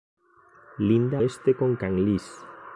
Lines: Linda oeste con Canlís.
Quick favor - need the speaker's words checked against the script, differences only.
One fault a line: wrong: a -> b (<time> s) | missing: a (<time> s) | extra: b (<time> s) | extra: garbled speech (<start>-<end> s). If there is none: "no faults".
no faults